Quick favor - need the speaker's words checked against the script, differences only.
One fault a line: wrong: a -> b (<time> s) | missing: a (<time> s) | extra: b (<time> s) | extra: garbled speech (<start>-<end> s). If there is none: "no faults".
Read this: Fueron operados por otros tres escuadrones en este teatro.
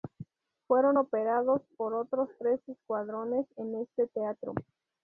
no faults